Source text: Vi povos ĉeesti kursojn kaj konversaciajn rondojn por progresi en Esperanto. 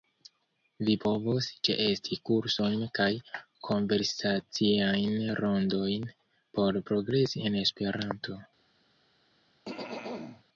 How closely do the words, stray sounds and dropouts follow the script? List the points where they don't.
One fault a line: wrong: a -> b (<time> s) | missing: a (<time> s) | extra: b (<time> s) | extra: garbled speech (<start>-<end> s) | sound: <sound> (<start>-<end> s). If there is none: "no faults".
sound: throat clearing (9.7-10.4 s)